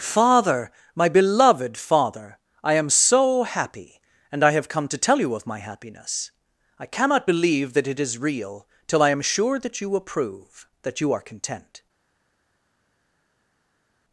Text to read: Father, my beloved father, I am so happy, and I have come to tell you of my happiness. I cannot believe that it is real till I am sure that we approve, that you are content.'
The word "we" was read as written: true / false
false